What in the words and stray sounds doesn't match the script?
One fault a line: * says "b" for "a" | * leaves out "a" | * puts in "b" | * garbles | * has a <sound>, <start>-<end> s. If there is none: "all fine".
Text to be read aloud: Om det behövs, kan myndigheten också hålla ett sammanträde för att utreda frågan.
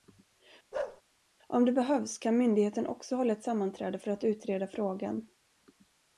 * has a bark, 0.7-1.0 s